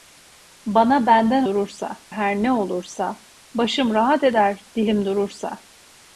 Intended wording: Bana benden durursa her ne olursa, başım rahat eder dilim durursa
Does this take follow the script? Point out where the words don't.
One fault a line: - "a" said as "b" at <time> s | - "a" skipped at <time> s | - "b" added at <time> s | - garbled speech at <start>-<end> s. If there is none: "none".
none